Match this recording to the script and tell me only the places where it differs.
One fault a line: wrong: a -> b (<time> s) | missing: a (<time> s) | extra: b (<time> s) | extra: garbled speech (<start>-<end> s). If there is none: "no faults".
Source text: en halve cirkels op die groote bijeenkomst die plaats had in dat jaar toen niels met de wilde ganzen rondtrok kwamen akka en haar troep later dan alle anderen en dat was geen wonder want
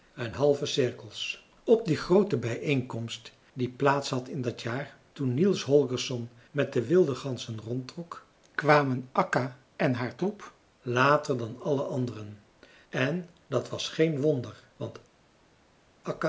extra: holgersson (5.6 s)